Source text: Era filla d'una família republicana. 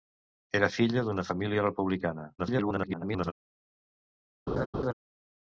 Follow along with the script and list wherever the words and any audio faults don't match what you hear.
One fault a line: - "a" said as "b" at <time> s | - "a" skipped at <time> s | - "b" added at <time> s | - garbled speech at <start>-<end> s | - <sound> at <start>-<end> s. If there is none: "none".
- garbled speech at 2.4-3.3 s
- laugh at 4.5-4.9 s